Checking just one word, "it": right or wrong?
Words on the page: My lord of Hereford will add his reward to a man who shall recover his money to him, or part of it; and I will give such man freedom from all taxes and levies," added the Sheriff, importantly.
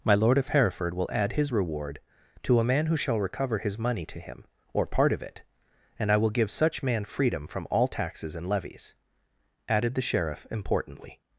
right